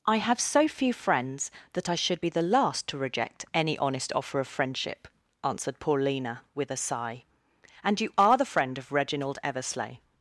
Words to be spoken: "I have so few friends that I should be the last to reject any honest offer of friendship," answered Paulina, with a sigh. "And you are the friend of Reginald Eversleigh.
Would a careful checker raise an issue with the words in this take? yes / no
no